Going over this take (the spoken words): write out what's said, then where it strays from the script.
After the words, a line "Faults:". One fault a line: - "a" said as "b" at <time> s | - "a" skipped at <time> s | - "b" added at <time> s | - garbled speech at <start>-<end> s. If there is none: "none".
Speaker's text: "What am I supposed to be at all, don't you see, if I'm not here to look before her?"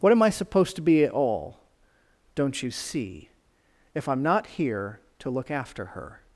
"What am I supposed to be at all, don't you see, if I'm not here to look after her?"
Faults:
- "before" said as "after" at 5.5 s